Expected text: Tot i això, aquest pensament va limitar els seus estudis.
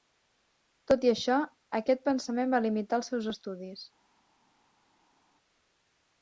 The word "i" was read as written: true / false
true